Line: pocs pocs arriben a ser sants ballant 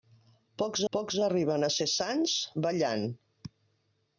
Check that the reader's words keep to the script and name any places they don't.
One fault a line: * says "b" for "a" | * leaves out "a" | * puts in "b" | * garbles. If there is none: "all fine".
all fine